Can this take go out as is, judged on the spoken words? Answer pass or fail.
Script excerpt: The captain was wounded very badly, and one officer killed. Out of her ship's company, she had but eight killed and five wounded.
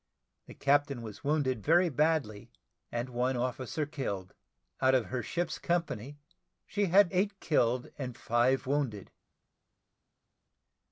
fail